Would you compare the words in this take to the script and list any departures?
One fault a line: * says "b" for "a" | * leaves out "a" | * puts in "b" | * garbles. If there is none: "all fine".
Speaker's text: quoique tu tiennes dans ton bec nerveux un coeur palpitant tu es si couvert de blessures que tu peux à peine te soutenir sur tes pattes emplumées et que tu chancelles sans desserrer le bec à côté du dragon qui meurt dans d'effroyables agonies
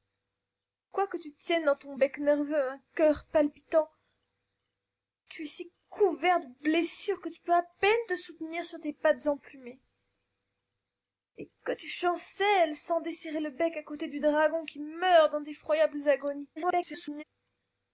* garbles